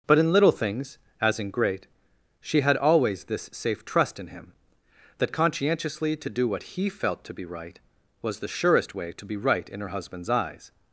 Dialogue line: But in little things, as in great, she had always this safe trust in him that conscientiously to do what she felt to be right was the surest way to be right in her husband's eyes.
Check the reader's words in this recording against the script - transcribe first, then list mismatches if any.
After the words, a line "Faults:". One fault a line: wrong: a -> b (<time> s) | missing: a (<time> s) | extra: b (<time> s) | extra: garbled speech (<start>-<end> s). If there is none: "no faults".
But in little things, as in great, she had always this safe trust in him that conscientiously to do what he felt to be right was the surest way to be right in her husband's eyes.
Faults:
wrong: she -> he (6.6 s)